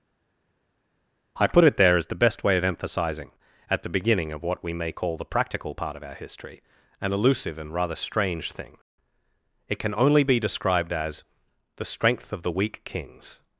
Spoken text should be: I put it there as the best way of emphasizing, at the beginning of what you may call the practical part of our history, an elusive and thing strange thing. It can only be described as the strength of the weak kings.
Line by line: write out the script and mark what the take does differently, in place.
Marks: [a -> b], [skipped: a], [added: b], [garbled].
I put it there as the best way of emphasizing, at the beginning of what [you -> we] may call the practical part of our history, an elusive and [thing -> rather] strange thing. It can only be described as the strength of the weak kings.